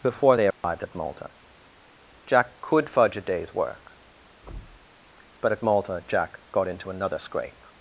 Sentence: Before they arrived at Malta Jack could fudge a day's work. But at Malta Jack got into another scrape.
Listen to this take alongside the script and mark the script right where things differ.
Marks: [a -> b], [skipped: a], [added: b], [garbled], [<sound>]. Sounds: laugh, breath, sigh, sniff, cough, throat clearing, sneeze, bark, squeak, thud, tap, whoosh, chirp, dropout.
Before they arrived [dropout] at Malta Jack could fudge a day's work. [thud] But at Malta Jack got into another scrape.